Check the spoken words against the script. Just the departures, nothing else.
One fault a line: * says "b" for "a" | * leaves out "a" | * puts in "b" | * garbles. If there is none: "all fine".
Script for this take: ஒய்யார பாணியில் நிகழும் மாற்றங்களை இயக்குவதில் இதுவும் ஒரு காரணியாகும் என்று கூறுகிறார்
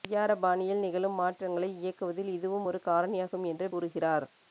all fine